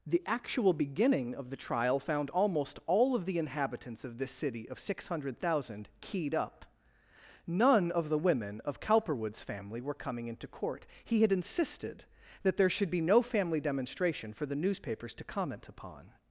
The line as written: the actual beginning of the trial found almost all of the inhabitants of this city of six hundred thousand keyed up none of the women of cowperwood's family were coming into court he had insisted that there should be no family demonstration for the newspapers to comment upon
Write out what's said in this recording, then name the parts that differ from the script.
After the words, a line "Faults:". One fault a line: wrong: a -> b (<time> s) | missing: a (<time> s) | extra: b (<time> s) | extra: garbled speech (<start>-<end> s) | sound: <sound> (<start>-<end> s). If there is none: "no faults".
the actual beginning of the trial found almost all of the inhabitants of this city of six hundred thousand keyed up none of the women of cowperwood's family were coming into court he had insisted that there should be no family demonstration for the newspapers to comment upon
Faults:
no faults